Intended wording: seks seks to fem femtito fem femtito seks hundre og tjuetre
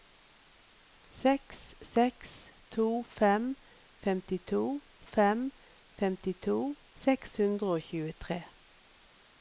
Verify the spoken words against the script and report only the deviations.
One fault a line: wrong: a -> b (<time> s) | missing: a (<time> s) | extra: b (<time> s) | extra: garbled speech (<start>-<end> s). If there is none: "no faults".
no faults